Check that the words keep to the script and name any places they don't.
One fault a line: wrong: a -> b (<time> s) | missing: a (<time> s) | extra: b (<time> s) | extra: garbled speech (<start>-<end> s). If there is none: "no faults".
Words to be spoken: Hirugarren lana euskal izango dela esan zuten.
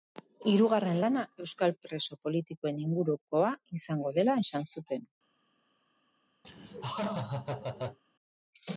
extra: preso politikoen ingurukoa (1.9 s)